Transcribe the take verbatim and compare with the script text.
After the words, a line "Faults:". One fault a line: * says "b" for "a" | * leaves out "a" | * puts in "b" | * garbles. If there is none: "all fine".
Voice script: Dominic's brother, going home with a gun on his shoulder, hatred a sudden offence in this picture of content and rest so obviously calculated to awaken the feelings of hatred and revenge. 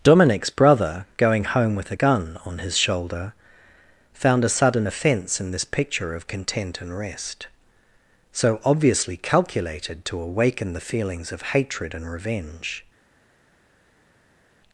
Dominic's brother, going home with a gun on his shoulder, found a sudden offence in this picture of content and rest so obviously calculated to awaken the feelings of hatred and revenge.
Faults:
* says "found" for "hatred"